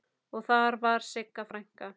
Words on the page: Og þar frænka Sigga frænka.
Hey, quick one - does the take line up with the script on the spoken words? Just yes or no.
no